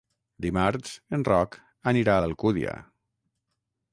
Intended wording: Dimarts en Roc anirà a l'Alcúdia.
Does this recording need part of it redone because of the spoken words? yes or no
no